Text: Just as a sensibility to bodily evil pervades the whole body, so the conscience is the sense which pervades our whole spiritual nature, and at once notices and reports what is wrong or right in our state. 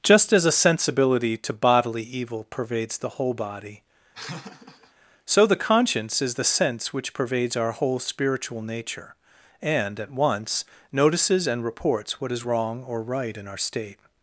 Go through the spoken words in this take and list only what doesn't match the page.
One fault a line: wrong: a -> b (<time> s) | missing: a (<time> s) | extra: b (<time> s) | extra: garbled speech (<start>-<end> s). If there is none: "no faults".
no faults